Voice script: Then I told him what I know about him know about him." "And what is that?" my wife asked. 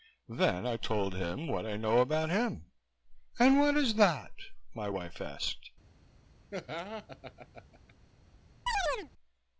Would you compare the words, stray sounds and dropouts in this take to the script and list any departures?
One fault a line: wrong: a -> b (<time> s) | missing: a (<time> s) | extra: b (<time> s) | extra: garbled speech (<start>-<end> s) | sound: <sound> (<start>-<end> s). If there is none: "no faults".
missing: know about him (2.7 s)
sound: laugh (6.5-7.9 s)
sound: chirp (8.7-9.1 s)